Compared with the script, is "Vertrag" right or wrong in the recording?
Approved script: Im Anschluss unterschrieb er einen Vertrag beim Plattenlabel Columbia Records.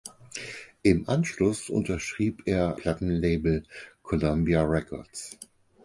wrong